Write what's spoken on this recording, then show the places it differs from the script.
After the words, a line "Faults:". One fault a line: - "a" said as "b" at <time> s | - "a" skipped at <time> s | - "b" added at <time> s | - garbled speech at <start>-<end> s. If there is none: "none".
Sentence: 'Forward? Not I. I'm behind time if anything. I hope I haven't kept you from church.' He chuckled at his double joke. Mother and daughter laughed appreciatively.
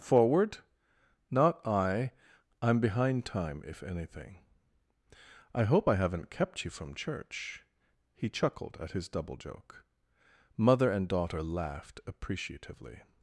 'Forward? Not I. I'm behind time if anything. I hope I haven't kept you from church.' He chuckled at his double joke. Mother and daughter laughed appreciatively.
Faults:
none